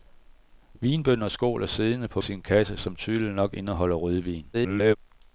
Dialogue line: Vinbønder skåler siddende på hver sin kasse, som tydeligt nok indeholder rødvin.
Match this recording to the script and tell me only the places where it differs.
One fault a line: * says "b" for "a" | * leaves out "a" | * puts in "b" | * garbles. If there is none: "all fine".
* leaves out "hver"
* garbles